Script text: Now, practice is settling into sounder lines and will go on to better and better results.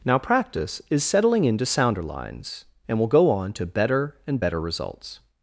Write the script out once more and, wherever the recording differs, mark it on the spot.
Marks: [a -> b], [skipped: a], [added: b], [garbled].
Now, practice is settling into sounder lines and will go on to better and better results.